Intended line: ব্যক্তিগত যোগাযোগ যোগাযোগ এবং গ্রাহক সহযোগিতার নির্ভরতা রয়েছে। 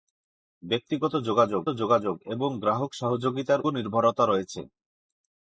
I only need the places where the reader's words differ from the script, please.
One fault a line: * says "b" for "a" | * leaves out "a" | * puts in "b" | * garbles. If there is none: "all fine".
all fine